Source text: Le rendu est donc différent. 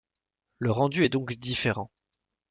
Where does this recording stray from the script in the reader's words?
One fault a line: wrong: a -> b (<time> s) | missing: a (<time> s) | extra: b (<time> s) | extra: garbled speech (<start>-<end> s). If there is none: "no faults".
no faults